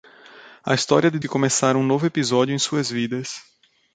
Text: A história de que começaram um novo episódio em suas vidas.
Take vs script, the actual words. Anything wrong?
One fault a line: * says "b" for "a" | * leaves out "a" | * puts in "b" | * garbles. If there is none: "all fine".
all fine